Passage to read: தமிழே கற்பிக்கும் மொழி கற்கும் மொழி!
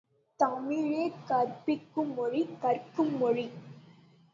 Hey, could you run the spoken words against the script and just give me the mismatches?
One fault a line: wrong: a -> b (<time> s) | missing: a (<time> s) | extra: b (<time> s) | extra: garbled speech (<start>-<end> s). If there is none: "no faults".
no faults